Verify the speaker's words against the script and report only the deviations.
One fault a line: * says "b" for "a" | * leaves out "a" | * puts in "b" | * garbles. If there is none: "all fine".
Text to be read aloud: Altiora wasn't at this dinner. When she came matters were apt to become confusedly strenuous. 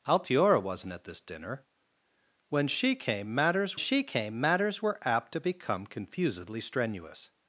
* puts in "she came matters"